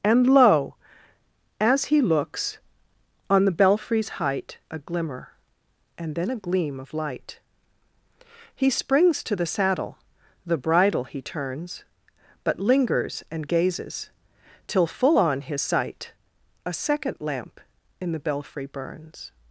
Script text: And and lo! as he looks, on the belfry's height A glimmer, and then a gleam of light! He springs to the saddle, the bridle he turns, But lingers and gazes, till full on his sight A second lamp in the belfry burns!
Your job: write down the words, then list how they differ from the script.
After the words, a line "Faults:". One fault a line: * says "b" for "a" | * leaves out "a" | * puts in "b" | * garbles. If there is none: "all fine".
And lo! as he looks, on the belfry's height A glimmer, and then a gleam of light! He springs to the saddle, the bridle he turns, But lingers and gazes, till full on his sight A second lamp in the belfry burns!
Faults:
* leaves out "and"